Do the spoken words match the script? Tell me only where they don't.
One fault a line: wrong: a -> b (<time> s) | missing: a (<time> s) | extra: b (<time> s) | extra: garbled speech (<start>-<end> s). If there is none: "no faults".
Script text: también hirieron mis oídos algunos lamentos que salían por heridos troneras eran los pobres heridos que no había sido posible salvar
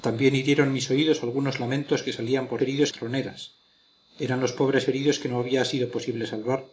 no faults